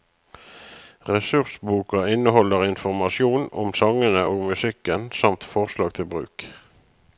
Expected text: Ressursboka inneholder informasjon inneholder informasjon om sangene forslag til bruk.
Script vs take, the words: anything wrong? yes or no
yes